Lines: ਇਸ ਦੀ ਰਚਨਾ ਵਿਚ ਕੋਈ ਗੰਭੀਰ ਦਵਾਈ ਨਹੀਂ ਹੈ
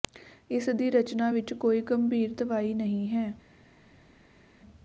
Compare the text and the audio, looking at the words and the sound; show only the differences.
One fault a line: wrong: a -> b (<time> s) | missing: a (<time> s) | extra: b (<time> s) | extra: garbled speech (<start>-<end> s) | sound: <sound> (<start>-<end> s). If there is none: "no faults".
no faults